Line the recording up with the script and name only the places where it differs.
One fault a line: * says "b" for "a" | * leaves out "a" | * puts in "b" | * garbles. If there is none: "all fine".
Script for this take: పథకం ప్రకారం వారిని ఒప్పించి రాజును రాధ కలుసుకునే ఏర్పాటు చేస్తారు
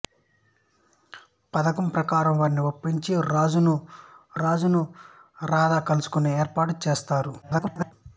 * puts in "రాజును"
* garbles